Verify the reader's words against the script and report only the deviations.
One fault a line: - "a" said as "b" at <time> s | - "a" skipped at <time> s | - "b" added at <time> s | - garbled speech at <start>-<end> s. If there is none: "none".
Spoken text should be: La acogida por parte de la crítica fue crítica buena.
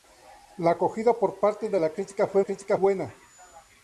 none